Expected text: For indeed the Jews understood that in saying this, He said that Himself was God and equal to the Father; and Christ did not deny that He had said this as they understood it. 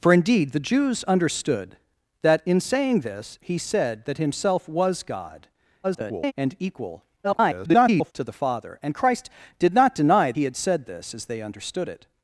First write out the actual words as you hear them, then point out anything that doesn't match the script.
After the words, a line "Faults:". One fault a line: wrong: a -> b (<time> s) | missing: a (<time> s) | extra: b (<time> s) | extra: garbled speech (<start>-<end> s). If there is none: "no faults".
For indeed the Jews understood that in saying this, He said that Himself was God [garbled] and equal [garbled] to the Father; and Christ did not deny He had said this as they understood it.
Faults:
extra: garbled speech (5.8-6.3 s)
extra: garbled speech (7.2-8.1 s)
missing: that (10.3 s)